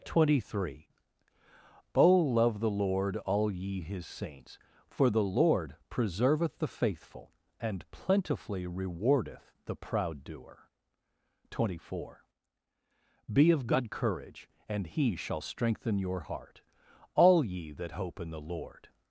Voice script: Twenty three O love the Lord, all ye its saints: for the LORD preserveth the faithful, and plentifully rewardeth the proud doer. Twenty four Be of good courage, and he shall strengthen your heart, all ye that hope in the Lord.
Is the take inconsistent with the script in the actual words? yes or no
yes